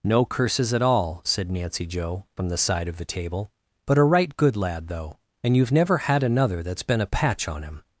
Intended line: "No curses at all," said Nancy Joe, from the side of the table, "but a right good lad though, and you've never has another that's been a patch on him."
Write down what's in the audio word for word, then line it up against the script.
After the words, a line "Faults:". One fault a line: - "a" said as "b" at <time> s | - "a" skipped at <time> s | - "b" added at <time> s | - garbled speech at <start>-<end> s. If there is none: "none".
"No curses at all," said Nancy Joe, from the side of the table, "but a right good lad though, and you've never had another that's been a patch on him."
Faults:
- "has" said as "had" at 6.0 s